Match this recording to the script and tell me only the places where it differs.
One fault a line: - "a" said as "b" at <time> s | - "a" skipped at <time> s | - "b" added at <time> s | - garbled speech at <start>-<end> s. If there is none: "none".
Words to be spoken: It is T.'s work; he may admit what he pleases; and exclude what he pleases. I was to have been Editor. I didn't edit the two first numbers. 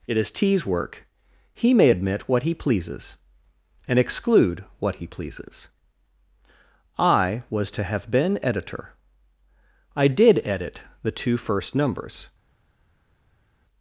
- "didn't" said as "did" at 10.1 s